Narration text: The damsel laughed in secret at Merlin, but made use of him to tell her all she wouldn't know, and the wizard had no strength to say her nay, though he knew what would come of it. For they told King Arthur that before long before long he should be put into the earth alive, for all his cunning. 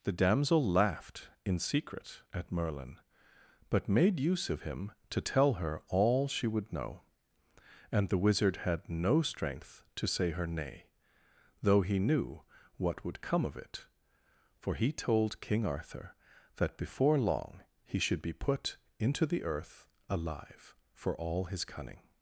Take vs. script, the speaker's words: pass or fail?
fail